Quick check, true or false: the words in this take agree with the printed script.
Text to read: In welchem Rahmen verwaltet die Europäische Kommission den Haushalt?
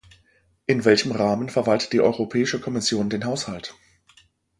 true